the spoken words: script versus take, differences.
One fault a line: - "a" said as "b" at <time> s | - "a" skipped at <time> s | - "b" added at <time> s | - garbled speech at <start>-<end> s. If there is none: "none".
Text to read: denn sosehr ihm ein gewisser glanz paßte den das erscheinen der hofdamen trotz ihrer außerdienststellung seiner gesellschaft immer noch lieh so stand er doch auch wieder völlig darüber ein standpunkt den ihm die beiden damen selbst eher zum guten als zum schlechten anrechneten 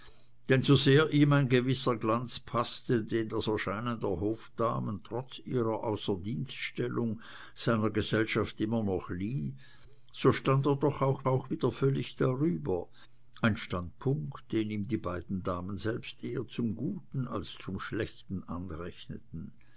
- "auch" added at 11.3 s